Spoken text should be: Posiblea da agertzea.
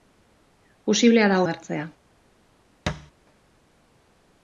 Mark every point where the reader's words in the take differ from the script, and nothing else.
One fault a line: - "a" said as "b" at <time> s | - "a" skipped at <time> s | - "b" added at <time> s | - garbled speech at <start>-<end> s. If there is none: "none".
none